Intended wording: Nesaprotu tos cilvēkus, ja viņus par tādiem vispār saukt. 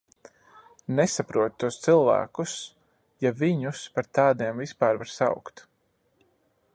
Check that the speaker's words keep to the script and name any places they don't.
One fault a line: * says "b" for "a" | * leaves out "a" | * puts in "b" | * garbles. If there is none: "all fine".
* puts in "var"